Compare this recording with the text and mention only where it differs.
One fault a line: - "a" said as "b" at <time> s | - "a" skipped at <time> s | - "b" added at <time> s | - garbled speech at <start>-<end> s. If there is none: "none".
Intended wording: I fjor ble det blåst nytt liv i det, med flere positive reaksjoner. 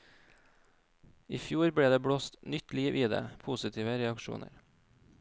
- "med flere" skipped at 3.2 s